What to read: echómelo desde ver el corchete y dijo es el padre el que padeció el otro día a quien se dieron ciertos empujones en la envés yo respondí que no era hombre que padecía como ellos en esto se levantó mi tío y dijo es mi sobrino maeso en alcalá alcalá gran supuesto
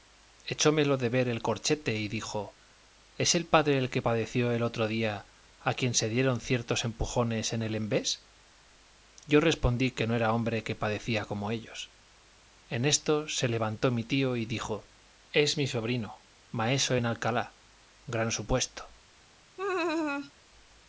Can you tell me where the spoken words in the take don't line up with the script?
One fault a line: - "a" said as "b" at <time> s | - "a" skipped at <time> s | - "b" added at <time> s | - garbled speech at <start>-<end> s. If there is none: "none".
- "desde" said as "de" at 1.0 s
- "la" said as "el" at 7.6 s
- "alcalá" skipped at 17.6 s